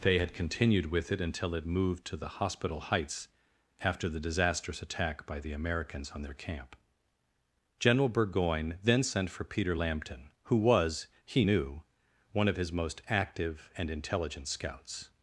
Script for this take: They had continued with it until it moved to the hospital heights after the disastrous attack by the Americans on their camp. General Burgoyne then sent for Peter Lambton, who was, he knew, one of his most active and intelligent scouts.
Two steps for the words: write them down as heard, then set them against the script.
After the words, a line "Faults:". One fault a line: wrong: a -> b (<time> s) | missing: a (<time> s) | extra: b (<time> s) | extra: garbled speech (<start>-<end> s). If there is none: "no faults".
They had continued with it until it moved to the hospital heights after the disastrous attack by the Americans on their camp. General Burgoyne then sent for Peter Lambton, who was, he knew, one of his most active and intelligent scouts.
Faults:
no faults